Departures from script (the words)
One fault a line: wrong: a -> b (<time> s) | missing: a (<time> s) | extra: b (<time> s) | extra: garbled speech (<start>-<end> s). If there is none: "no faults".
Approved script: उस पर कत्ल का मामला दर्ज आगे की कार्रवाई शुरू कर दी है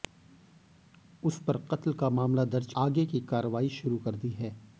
no faults